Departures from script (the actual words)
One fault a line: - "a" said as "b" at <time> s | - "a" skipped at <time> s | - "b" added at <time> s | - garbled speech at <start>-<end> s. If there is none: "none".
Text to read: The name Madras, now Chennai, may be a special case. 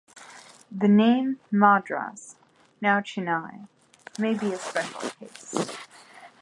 none